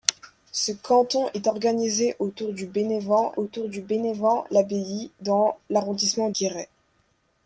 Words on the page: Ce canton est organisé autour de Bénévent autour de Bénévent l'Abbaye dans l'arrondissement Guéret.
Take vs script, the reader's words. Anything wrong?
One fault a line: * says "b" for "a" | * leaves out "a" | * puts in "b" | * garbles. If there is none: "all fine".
all fine